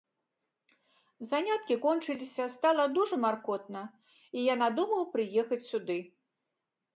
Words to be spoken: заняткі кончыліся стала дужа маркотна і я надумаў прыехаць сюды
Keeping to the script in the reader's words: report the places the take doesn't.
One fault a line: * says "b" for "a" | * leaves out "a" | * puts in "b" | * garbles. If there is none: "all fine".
all fine